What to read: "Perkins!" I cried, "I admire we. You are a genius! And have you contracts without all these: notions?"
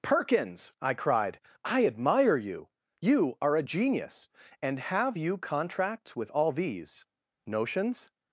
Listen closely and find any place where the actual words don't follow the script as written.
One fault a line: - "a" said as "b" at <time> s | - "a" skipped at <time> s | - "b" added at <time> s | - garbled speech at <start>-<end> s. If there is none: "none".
- "we" said as "you" at 2.4 s
- "without" said as "with" at 6.2 s